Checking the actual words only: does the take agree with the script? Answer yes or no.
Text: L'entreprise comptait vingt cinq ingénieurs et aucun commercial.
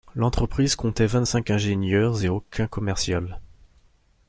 yes